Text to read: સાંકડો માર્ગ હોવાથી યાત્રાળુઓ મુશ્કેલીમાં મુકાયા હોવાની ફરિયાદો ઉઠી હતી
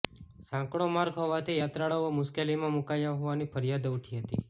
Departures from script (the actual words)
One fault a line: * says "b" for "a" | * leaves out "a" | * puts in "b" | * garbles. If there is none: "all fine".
all fine